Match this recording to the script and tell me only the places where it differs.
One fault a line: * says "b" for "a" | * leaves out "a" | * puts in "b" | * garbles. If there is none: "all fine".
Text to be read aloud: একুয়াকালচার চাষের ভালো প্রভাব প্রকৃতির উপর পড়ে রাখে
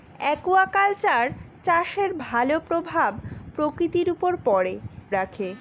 all fine